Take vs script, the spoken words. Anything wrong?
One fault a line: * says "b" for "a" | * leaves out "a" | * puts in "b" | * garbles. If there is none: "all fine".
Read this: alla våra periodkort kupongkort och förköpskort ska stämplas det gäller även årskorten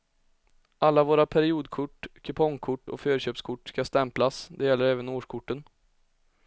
all fine